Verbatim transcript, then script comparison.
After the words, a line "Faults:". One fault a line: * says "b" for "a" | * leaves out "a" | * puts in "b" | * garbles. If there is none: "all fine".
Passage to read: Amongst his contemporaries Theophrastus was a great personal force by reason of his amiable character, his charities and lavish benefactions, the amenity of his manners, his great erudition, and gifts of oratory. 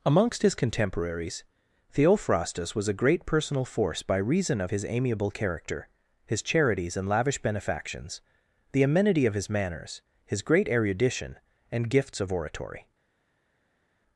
Amongst his contemporaries Theophrastus was a great personal force by reason of his amiable character, his charities and lavish benefactions, the amenity of his manners, his great erudition, and gifts of oratory.
Faults:
all fine